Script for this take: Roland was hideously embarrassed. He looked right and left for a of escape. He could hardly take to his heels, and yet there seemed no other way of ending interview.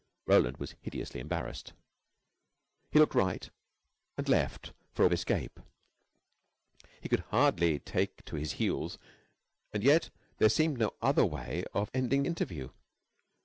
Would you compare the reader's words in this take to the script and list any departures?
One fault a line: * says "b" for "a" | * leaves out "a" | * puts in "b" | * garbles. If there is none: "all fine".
all fine